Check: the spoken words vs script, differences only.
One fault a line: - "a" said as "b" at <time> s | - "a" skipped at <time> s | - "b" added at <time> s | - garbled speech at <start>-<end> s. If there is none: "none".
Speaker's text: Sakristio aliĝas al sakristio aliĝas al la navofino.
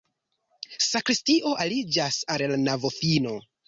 - "sakristio aliĝas al" skipped at 2.5 s